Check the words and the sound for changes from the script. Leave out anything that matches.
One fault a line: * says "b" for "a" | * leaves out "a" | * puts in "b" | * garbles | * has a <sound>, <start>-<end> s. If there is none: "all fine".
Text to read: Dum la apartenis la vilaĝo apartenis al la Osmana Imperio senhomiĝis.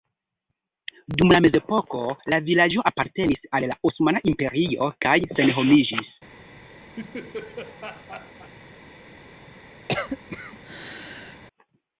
* says "mezepoko" for "apartenis"
* puts in "kaj"
* has a laugh, 7.0-8.5 s
* has a cough, 9.9-11.4 s